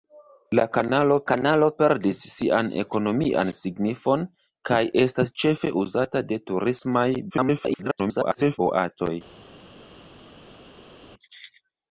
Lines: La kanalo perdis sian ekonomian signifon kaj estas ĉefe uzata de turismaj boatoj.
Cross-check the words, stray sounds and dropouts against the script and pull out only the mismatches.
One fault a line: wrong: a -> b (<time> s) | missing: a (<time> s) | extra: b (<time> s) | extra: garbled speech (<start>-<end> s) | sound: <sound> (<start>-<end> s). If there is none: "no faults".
extra: kanalo (1.3 s)
extra: garbled speech (7.3-8.6 s)